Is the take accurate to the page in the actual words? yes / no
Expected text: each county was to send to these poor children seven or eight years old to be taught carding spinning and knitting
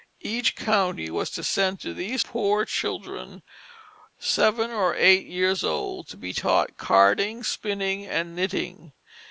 yes